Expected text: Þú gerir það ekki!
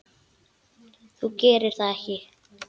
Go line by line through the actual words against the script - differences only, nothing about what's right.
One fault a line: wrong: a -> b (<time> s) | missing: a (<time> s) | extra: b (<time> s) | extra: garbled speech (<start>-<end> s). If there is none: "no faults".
no faults